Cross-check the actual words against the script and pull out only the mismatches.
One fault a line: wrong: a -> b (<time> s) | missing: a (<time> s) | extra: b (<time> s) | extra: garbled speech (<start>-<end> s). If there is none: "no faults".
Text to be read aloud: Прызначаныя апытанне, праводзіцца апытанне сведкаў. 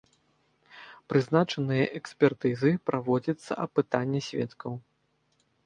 wrong: апытанне -> экспертызы (2.0 s)